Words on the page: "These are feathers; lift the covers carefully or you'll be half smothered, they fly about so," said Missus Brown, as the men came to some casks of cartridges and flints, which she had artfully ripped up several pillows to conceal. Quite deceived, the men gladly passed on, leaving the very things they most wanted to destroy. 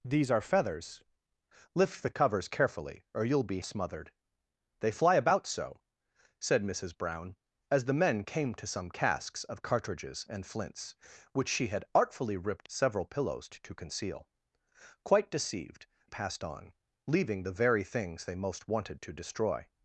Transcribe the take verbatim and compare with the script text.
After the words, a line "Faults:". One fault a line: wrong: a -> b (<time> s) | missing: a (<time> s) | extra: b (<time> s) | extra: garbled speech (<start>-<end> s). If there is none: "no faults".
"These are feathers; lift the covers carefully or you'll be smothered, they fly about so," said Missus Brown, as the men came to some casks of cartridges and flints, which she had artfully ripped several pillows to conceal. Quite deceived, passed on, leaving the very things they most wanted to destroy.
Faults:
missing: half (3.6 s)
missing: up (12.7 s)
missing: the men gladly (15.9 s)